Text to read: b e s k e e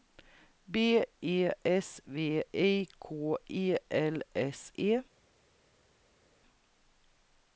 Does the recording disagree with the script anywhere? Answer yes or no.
yes